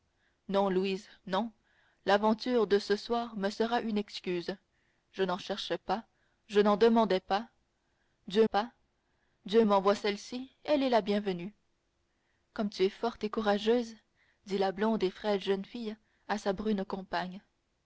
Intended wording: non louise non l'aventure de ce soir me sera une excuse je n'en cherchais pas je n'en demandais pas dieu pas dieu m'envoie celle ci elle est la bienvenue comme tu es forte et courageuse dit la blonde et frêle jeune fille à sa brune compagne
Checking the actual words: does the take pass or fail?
pass